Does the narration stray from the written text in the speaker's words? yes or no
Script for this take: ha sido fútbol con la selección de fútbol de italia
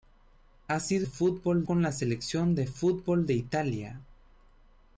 no